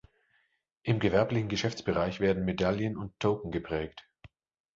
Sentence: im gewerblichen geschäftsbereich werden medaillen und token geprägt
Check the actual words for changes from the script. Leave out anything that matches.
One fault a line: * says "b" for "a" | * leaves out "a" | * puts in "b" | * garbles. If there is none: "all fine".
all fine